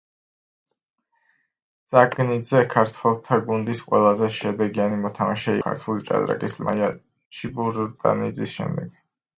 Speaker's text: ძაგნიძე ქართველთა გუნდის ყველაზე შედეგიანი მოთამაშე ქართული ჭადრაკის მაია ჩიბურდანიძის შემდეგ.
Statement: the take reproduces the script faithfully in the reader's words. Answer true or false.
true